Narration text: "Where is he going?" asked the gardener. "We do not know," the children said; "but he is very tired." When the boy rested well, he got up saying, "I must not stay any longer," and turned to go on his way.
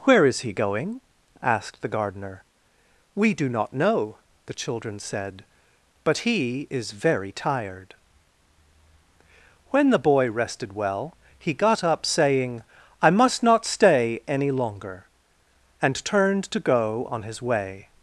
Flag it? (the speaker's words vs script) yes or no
no